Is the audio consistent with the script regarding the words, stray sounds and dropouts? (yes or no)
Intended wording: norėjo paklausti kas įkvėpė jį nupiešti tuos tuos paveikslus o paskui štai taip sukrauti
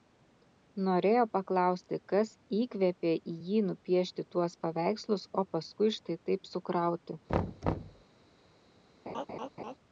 no